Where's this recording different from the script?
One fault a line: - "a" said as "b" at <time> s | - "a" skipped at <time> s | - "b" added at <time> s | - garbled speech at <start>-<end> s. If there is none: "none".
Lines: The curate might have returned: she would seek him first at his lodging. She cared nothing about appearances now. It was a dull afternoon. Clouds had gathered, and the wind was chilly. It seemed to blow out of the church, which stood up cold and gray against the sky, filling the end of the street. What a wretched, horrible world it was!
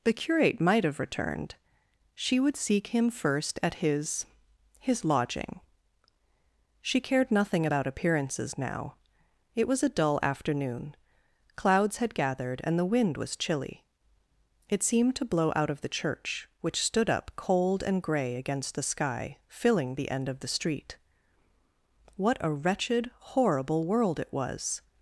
- "his" added at 4.8 s